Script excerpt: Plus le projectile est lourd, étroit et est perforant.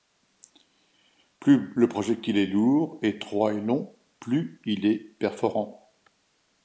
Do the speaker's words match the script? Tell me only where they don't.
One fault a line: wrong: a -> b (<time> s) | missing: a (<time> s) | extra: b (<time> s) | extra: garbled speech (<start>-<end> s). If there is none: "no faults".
extra: long plus il (3.6 s)